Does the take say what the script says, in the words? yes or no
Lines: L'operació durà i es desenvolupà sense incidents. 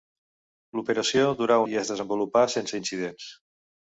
yes